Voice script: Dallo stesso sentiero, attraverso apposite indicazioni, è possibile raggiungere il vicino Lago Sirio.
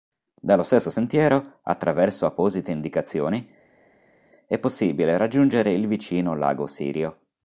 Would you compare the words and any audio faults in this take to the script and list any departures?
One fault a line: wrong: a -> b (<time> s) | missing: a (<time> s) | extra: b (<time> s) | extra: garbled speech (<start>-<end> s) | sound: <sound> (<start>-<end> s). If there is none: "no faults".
no faults